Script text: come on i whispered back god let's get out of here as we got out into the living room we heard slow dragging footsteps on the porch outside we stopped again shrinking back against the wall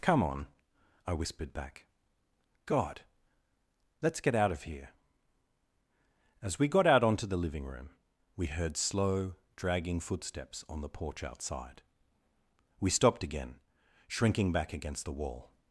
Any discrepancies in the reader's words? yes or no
yes